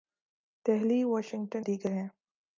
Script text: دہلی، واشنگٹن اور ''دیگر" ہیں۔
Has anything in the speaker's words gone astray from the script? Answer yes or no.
yes